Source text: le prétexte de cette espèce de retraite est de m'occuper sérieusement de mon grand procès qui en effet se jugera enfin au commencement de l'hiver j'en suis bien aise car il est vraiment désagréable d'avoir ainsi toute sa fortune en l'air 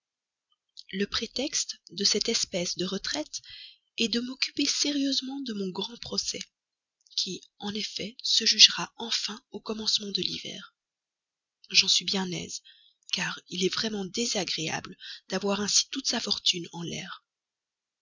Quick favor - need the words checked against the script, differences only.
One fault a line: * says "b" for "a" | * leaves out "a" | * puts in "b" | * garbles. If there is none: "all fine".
all fine